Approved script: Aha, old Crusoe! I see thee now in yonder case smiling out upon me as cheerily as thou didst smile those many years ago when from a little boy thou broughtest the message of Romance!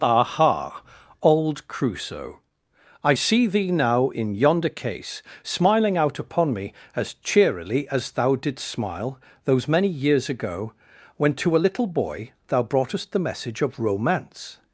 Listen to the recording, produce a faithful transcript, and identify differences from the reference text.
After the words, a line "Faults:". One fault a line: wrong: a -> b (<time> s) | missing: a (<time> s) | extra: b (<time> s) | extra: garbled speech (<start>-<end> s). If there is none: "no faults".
Aha, old Crusoe! I see thee now in yonder case smiling out upon me as cheerily as thou didst smile those many years ago when to a little boy thou broughtest the message of Romance!
Faults:
wrong: from -> to (11.3 s)